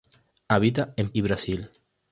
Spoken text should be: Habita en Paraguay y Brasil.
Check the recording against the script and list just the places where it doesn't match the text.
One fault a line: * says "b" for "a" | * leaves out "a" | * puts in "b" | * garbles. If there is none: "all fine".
* leaves out "Paraguay"